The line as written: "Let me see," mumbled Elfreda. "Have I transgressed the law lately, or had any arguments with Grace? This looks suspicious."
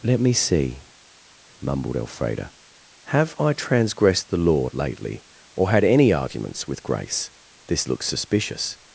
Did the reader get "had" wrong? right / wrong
right